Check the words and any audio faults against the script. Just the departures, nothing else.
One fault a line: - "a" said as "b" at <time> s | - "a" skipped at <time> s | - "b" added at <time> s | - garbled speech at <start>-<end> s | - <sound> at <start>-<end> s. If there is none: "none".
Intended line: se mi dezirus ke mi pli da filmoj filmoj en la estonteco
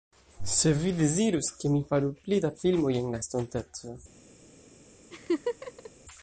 - "mi" said as "vi" at 0.8 s
- "faru" added at 1.9 s
- "filmoj" skipped at 3.0 s
- laugh at 5.1-5.9 s